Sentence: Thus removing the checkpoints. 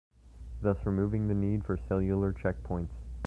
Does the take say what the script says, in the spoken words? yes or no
no